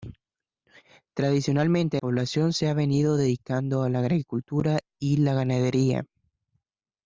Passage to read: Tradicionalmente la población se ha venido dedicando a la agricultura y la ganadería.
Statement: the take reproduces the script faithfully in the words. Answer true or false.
false